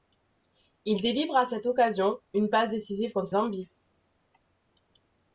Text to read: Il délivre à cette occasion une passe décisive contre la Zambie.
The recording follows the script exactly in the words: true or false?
false